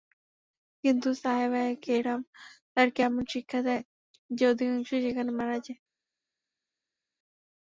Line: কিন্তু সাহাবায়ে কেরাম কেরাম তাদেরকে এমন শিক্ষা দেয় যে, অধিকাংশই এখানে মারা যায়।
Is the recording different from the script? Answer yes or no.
yes